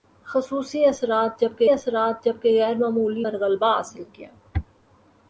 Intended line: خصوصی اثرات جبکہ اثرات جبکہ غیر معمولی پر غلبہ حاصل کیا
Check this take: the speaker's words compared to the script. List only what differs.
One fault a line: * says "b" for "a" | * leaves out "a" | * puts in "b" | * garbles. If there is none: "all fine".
all fine